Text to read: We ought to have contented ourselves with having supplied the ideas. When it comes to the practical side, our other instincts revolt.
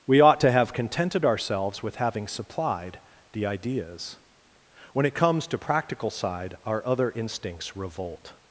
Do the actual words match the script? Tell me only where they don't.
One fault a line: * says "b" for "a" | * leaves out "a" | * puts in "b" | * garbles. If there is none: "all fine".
* leaves out "the"